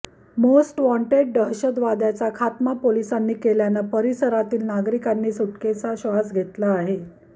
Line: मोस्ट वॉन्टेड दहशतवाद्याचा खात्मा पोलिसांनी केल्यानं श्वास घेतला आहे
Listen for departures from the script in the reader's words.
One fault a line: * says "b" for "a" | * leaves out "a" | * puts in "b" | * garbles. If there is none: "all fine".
* puts in "परिसरातील नागरिकांनी सुटकेचा"